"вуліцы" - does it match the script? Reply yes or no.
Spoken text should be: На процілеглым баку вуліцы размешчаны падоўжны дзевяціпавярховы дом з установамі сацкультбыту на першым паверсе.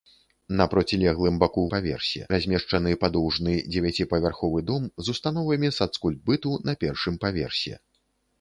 no